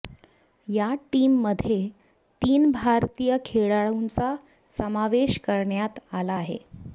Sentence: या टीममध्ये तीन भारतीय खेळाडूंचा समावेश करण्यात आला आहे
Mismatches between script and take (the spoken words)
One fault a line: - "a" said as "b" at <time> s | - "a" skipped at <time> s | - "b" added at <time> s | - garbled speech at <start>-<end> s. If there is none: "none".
none